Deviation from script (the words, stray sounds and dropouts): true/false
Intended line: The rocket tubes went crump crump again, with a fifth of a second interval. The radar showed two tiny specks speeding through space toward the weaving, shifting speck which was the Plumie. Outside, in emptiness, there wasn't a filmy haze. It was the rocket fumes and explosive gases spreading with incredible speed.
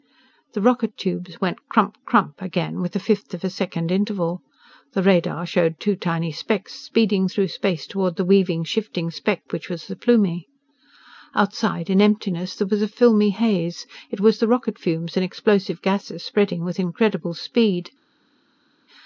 true